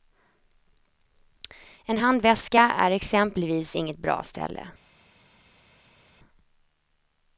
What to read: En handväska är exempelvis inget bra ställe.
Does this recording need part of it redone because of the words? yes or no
no